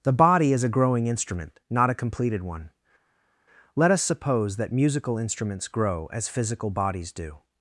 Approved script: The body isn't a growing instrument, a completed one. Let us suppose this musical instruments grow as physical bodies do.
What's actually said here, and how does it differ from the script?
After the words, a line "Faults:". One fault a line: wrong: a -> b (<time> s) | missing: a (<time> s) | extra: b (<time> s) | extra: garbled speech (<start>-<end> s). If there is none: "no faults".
The body is a growing instrument, not a completed one. Let us suppose that musical instruments grow as physical bodies do.
Faults:
wrong: isn't -> is (0.5 s)
extra: not (1.7 s)
wrong: this -> that (4.6 s)